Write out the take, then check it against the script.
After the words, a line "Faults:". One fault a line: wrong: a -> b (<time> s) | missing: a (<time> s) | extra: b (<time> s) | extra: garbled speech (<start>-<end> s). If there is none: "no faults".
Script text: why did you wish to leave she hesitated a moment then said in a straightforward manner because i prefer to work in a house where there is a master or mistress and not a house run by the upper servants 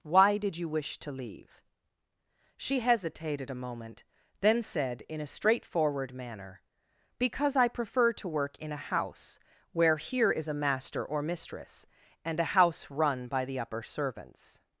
why did you wish to leave she hesitated a moment then said in a straightforward manner because i prefer to work in a house where here is a master or mistress and a house run by the upper servants
Faults:
wrong: there -> here (10.0 s)
missing: not (12.4 s)